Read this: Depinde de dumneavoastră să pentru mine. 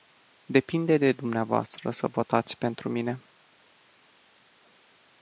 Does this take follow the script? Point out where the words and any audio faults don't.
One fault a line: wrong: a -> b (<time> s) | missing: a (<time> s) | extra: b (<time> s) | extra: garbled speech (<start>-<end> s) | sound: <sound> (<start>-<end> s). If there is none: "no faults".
extra: votați (2.1 s)